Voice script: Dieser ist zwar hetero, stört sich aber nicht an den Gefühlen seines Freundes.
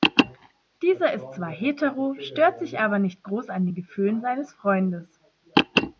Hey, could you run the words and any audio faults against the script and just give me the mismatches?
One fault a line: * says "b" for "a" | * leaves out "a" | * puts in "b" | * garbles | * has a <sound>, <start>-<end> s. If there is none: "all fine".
* puts in "groß"